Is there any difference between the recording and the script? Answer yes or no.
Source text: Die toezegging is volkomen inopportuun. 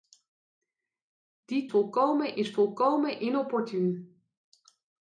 yes